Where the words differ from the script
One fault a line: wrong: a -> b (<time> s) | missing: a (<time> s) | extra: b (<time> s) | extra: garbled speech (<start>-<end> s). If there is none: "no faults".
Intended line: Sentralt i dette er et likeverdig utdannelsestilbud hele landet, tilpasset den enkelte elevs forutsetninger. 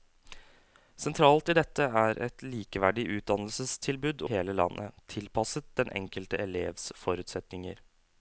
no faults